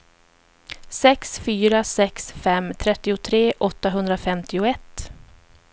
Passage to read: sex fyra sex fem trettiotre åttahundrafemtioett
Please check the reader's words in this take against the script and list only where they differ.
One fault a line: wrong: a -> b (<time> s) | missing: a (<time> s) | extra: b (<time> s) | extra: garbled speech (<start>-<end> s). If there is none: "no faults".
no faults